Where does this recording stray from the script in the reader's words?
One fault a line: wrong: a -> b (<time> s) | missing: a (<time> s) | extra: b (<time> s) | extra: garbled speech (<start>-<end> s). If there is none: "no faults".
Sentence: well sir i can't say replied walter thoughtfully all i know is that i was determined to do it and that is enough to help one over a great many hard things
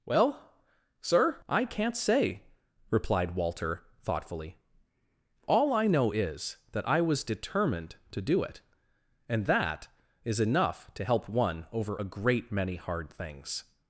no faults